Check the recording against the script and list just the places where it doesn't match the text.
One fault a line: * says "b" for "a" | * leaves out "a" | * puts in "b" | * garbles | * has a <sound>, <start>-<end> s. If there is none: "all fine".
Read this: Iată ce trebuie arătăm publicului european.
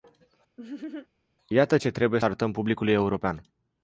* has a laugh, 0.6-1.1 s